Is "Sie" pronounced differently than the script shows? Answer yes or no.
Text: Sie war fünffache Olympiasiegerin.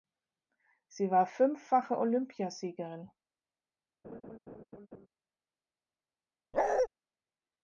no